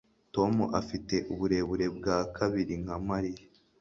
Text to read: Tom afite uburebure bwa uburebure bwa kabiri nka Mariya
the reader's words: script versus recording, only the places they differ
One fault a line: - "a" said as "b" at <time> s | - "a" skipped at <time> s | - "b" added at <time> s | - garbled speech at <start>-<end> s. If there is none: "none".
- "uburebure bwa" skipped at 2.2 s